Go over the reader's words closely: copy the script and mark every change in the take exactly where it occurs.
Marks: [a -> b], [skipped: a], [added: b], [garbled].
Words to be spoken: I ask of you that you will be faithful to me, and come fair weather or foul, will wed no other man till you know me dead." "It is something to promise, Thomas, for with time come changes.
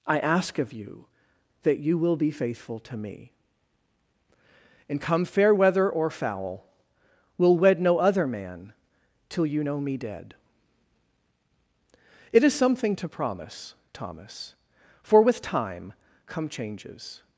I ask of you that you will be faithful to me, and come fair weather or foul, will wed no other man till you know me dead." "It is something to promise, Thomas, for with time come changes.